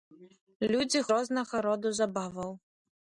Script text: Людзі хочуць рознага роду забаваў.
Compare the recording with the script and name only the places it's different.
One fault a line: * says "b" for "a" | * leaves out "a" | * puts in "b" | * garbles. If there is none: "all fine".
* leaves out "хочуць"